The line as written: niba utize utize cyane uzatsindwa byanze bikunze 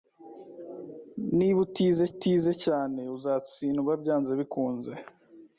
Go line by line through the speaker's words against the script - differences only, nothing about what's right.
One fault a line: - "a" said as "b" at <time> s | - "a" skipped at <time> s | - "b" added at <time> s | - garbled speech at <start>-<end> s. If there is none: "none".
none